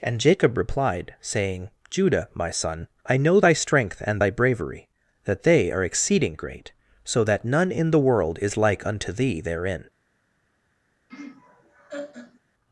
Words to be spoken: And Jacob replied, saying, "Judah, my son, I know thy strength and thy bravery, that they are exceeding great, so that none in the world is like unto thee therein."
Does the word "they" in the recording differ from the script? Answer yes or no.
no